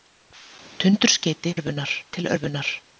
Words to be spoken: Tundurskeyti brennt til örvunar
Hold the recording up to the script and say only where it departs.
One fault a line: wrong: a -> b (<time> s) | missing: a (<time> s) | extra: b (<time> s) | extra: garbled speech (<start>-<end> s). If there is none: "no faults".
wrong: brennt -> örvunar (1.6 s)